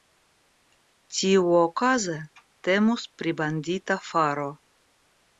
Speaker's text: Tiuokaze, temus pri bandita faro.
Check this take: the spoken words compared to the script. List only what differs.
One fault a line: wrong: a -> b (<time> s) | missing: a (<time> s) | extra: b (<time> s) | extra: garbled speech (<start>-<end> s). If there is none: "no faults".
no faults